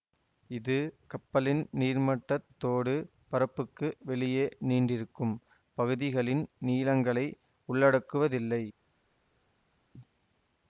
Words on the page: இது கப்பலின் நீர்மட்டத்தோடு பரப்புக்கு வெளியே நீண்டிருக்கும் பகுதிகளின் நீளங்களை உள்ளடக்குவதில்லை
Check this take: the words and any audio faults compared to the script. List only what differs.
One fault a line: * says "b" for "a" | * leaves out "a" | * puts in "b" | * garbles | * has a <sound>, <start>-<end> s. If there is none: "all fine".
all fine